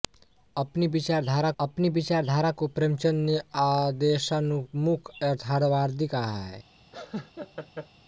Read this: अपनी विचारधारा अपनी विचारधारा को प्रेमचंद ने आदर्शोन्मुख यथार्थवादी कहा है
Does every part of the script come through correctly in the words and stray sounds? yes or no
no